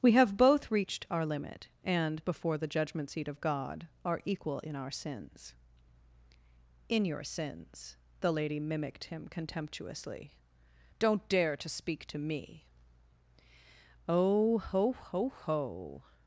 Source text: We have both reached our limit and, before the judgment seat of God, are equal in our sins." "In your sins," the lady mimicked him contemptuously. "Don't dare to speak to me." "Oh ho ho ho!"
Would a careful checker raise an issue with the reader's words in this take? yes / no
no